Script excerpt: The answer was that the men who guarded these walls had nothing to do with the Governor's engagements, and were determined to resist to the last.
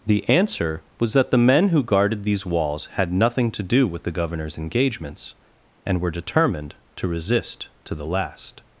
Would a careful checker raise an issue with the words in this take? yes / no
no